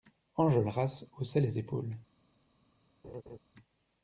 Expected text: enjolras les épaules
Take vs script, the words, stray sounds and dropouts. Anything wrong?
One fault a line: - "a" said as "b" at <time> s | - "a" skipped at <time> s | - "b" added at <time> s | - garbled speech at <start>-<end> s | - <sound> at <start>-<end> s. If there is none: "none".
- "haussait" added at 1.2 s
- laugh at 3.0-3.4 s